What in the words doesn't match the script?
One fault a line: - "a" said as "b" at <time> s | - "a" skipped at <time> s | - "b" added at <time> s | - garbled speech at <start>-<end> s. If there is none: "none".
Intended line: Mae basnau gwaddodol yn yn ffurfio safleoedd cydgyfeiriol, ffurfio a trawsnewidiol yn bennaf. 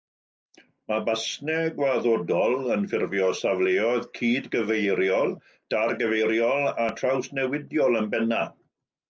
- "yn" skipped at 2.9 s
- "ffurfio" said as "dargyfeiriol" at 5.8 s